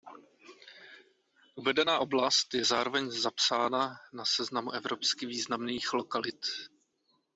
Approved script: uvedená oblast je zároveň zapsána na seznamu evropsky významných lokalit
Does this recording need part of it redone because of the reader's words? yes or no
no